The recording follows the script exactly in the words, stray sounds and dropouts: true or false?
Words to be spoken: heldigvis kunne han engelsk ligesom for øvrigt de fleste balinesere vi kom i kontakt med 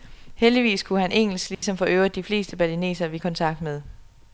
false